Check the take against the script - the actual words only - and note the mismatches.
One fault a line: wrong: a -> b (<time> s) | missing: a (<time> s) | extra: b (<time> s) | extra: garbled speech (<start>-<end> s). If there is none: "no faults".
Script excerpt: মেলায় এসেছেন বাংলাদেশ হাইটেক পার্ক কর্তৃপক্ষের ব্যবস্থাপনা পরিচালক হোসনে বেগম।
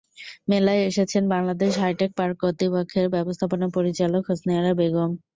extra: আরা (4.6 s)